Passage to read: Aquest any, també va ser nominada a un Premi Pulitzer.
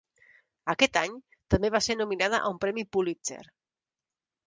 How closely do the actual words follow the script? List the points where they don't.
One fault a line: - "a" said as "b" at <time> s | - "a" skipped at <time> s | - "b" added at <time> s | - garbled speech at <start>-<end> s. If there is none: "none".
none